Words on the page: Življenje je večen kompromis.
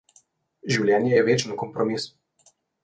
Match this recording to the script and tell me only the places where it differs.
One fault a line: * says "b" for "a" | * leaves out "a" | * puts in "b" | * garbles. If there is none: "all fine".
all fine